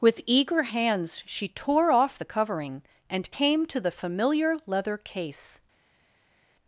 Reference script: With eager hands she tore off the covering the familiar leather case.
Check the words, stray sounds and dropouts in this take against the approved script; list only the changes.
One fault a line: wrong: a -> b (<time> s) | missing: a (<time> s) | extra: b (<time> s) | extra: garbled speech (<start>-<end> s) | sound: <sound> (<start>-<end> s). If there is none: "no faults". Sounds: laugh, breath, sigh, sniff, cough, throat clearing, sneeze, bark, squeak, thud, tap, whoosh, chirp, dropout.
extra: and came to (3.1 s)